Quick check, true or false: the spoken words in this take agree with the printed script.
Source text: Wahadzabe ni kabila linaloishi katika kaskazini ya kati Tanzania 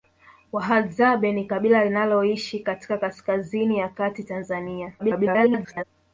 false